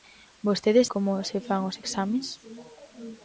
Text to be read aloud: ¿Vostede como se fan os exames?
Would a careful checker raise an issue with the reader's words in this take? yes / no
no